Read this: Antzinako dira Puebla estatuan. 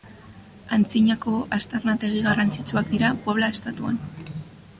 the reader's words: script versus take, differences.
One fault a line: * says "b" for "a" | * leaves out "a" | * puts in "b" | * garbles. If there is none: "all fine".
* puts in "aztarnategi garrantzitsuak"